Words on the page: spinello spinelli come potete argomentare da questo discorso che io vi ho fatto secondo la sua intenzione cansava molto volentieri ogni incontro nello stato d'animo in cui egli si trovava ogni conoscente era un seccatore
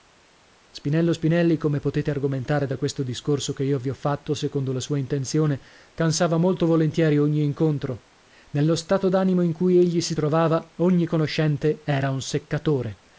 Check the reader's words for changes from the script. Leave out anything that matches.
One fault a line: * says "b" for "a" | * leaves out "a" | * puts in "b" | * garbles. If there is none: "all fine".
all fine